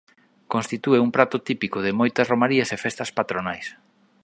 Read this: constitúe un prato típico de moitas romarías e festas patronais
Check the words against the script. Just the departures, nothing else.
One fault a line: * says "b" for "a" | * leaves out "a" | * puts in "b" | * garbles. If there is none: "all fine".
all fine